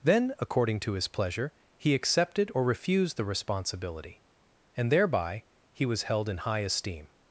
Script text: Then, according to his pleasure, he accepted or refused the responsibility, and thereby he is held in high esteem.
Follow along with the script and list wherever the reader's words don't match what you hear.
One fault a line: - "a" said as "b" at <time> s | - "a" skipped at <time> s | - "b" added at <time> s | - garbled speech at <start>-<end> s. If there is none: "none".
- "is" said as "was" at 5.8 s